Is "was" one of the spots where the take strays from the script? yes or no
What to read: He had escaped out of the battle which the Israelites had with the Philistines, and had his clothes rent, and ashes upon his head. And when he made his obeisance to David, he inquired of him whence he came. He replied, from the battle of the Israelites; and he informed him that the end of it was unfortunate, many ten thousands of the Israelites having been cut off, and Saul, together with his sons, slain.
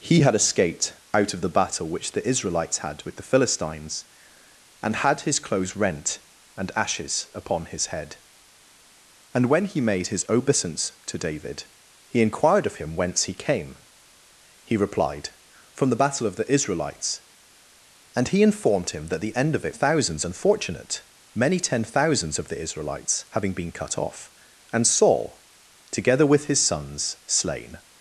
yes